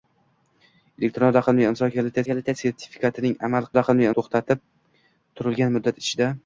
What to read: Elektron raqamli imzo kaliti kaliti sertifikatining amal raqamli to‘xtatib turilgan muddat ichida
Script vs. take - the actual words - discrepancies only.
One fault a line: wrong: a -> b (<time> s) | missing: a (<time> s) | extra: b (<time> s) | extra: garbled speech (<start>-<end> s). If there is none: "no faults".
no faults